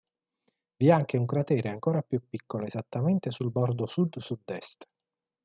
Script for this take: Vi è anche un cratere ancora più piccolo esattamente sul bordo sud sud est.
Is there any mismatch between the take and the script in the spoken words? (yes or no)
no